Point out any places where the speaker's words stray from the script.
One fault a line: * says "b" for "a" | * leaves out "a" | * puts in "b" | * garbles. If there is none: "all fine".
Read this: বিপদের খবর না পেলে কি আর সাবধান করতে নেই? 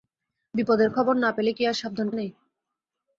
* leaves out "করতে"